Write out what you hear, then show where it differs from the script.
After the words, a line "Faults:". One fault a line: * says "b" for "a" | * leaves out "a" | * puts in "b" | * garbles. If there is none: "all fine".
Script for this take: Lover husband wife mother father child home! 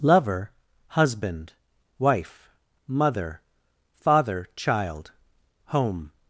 Lover husband wife mother father child home!
Faults:
all fine